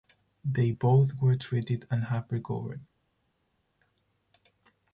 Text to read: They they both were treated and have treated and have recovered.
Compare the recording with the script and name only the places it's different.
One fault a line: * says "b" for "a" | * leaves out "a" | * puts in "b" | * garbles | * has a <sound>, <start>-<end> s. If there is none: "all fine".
* leaves out "they"
* leaves out "treated and have"